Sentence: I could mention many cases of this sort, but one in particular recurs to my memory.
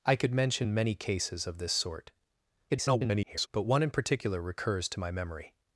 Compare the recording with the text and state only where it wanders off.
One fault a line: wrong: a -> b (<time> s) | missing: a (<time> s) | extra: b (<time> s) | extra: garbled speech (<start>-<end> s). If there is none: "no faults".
extra: garbled speech (2.7-3.5 s)